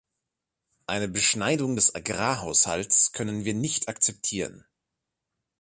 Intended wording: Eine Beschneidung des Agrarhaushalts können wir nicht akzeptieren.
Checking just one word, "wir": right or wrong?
right